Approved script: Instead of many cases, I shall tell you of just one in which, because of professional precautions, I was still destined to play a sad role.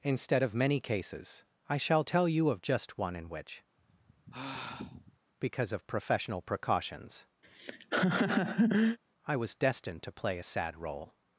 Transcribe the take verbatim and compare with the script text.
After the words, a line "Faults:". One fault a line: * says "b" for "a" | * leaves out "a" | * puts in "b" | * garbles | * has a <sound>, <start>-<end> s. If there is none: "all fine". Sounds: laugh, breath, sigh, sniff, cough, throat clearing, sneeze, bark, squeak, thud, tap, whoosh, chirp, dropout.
Instead of many cases, I shall tell you of just one in which, because of professional precautions, I was destined to play a sad role.
Faults:
* has a sigh, 3.8-5.2 s
* has a laugh, 7.4-9.0 s
* leaves out "still"